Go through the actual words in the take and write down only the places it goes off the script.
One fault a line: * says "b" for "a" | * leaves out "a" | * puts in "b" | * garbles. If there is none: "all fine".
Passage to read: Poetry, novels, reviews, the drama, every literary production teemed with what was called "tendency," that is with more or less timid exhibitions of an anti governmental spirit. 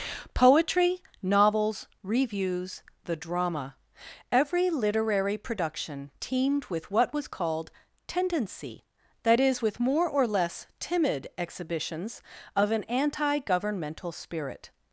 all fine